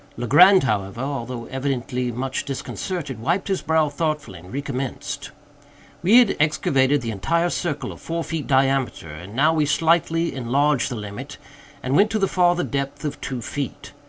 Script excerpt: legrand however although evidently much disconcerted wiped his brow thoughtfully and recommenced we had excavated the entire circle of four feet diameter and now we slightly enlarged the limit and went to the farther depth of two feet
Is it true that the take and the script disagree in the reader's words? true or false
false